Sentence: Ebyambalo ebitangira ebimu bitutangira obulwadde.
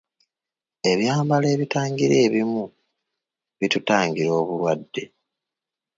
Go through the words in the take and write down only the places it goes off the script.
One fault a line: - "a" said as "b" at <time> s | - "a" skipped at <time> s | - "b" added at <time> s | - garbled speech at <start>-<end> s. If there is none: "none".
none